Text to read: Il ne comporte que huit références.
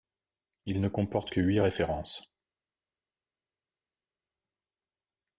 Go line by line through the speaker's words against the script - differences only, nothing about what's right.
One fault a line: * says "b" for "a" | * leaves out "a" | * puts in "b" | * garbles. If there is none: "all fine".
all fine